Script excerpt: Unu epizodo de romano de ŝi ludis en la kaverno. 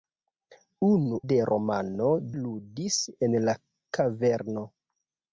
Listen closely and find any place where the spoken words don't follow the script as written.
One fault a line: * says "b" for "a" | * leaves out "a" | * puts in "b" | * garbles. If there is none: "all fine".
* leaves out "epizodo"
* leaves out "de ŝi"